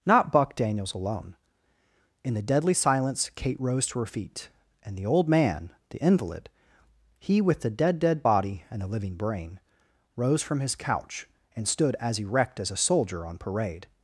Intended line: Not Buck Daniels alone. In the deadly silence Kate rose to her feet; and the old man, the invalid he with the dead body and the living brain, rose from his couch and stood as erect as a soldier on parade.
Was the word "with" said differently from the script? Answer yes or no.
no